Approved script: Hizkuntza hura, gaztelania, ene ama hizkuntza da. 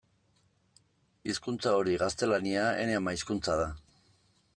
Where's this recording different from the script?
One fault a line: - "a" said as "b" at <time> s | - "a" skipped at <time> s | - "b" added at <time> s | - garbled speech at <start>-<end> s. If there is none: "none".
- "hura" said as "hori" at 1.8 s